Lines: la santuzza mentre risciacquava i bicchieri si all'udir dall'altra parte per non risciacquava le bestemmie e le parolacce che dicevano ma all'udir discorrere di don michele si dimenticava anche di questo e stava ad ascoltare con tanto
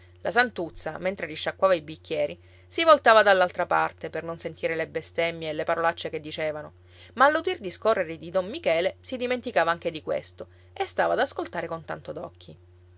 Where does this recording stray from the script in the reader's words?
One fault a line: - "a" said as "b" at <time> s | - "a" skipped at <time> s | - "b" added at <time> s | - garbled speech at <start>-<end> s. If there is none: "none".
- "all'udir" said as "voltava" at 2.8 s
- "risciacquava" said as "sentire" at 4.4 s